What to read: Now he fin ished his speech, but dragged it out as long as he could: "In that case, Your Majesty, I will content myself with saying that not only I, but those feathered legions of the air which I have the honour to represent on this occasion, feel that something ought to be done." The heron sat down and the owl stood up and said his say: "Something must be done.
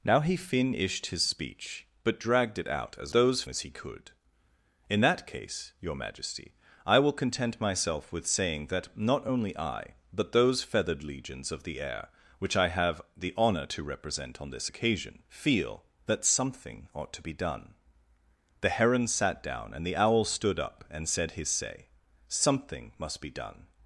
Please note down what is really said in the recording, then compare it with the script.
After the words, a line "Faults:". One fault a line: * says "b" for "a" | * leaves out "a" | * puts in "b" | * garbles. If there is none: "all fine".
Now he fin ished his speech, but dragged it out as those as he could: "In that case, Your Majesty, I will content myself with saying that not only I, but those feathered legions of the air which I have the honour to represent on this occasion, feel that something ought to be done." The heron sat down and the owl stood up and said his say: "Something must be done.
Faults:
* says "those" for "long"